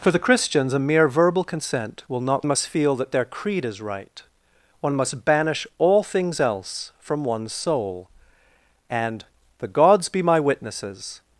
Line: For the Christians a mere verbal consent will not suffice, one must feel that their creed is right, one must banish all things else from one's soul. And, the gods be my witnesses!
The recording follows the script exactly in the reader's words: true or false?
false